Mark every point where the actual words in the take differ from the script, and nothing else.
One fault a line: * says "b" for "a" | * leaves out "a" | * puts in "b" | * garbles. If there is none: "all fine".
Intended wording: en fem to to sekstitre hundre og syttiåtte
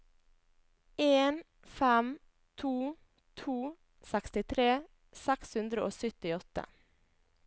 * puts in "seks"